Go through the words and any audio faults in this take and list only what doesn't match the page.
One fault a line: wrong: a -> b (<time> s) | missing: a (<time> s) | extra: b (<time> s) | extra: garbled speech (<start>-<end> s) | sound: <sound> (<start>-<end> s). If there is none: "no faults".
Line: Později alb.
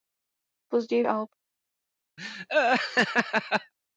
sound: laugh (2.2-3.7 s)